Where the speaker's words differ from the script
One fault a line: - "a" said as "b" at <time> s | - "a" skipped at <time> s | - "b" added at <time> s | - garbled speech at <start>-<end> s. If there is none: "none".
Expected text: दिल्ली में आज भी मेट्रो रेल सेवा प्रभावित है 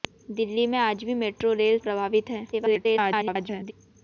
- "सेवा" skipped at 1.8 s
- garbled speech at 2.5-3.7 s